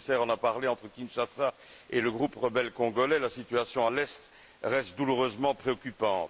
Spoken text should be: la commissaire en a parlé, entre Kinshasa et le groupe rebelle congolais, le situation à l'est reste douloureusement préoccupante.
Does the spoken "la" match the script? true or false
false